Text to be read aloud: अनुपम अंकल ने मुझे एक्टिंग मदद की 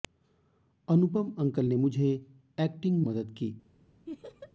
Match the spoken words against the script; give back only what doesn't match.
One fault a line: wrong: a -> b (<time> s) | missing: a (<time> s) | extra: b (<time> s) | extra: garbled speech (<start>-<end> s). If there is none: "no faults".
no faults